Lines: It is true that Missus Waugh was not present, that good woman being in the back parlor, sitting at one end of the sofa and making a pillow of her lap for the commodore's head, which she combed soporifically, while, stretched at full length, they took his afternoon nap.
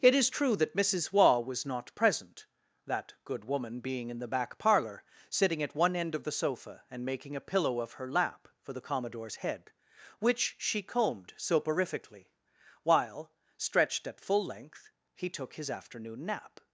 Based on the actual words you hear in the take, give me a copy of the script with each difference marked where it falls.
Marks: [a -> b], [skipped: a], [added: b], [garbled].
It is true that Missus Waugh was not present, that good woman being in the back parlor, sitting at one end of the sofa and making a pillow of her lap for the commodore's head, which she combed soporifically, while, stretched at full length, [they -> he] took his afternoon nap.